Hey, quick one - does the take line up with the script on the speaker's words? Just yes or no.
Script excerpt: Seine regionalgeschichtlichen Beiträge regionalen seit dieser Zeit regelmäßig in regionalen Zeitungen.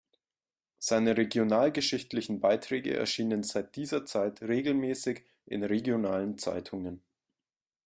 no